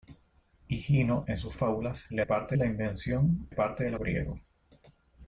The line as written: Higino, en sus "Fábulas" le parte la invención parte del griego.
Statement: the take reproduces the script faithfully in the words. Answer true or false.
true